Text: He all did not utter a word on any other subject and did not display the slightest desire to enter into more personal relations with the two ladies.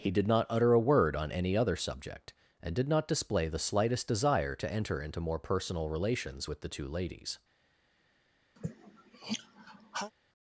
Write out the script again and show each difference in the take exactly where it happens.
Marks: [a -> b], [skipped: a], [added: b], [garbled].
He [skipped: all] did not utter a word on any other subject and did not display the slightest desire to enter into more personal relations with the two ladies.